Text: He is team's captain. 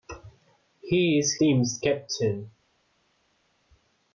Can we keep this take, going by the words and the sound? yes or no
yes